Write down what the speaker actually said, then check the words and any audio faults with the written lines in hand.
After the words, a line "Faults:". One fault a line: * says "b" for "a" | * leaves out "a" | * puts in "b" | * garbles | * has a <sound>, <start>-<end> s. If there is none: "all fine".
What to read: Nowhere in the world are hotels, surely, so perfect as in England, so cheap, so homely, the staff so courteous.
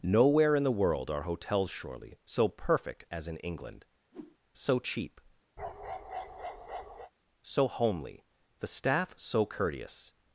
Nowhere in the world are hotels, surely, so perfect as in England, so cheap, so homely, the staff so courteous.
Faults:
* has a whoosh, 4.1-4.4 s
* has a bark, 5.6-7.1 s